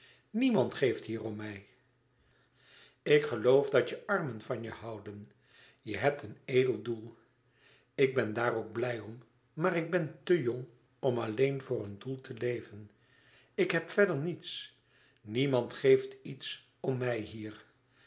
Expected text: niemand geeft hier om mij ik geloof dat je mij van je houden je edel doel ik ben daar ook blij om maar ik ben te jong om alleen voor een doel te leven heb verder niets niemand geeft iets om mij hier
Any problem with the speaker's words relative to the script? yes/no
yes